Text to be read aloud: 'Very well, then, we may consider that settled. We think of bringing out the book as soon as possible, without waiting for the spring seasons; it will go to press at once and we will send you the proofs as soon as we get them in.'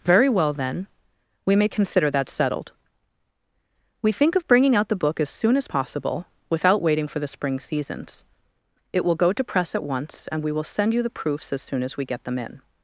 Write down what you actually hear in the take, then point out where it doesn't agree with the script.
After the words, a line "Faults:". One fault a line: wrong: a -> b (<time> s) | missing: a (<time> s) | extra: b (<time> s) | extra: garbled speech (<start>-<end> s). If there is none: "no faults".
'Very well, then, we may consider that settled. We think of bringing out the book as soon as possible, without waiting for the spring seasons; it will go to press at once and we will send you the proofs as soon as we get them in.'
Faults:
no faults